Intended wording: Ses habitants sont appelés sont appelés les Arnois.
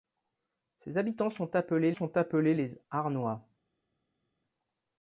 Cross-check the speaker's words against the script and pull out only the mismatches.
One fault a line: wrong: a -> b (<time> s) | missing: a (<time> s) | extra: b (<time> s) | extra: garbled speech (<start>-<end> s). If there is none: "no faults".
no faults